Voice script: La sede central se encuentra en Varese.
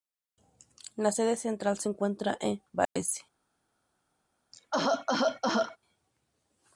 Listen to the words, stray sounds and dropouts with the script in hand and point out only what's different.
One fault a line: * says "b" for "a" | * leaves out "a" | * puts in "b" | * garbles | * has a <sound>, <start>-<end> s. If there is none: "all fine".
* has a dropout, 2.8-3.0 s
* has a cough, 4.5-5.8 s